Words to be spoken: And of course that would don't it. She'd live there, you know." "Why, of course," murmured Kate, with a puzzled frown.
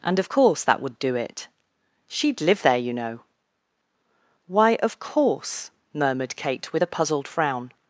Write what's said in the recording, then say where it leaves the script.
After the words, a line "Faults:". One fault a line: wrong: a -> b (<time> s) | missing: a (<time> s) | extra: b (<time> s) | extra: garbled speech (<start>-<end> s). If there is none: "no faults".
And of course that would do it. She'd live there, you know." "Why, of course," murmured Kate, with a puzzled frown.
Faults:
wrong: don't -> do (1.0 s)